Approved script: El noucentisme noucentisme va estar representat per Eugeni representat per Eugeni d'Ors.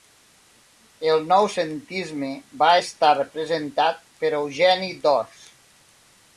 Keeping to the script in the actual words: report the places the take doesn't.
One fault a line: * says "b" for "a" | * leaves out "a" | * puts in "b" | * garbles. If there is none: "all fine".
* leaves out "noucentisme"
* leaves out "representat per Eugeni"